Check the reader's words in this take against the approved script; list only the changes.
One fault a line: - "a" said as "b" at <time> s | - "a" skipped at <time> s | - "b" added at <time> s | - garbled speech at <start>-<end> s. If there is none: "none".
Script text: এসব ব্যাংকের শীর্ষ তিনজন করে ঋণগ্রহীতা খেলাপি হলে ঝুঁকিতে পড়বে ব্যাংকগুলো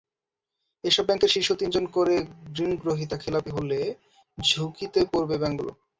none